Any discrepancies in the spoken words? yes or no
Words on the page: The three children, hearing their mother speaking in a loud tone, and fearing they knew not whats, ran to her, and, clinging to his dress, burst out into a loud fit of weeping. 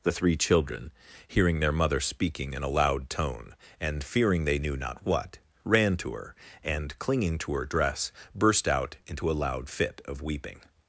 yes